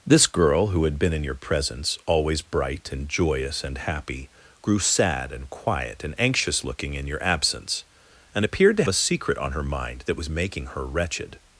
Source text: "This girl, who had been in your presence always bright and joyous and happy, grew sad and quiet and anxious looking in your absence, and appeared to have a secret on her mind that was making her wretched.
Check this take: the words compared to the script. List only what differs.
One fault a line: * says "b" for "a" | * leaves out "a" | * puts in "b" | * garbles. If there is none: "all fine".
* leaves out "have"